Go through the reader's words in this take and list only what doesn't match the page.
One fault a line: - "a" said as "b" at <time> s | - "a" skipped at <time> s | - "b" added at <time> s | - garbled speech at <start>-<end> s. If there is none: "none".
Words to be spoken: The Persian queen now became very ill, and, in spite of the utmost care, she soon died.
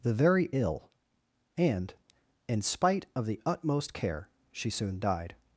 - "Persian queen now became" skipped at 0.1 s